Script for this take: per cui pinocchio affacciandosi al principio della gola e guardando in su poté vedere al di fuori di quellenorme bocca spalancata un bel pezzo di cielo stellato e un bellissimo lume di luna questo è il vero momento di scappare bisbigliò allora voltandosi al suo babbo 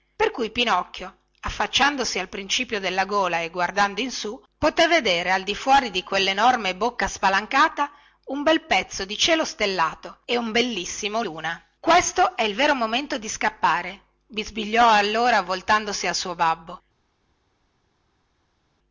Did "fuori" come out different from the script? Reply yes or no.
no